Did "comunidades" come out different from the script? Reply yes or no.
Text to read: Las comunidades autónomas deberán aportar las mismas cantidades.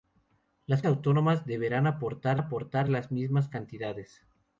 yes